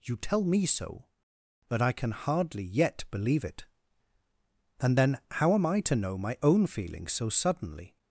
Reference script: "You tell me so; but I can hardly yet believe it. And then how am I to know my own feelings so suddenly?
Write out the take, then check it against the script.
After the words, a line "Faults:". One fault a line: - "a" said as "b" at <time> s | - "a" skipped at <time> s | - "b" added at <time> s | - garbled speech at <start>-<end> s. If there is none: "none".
"You tell me so; but I can hardly yet believe it. And then how am I to know my own feelings so suddenly?
Faults:
none